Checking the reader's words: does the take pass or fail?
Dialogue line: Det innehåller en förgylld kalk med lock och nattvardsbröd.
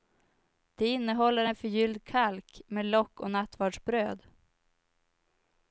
pass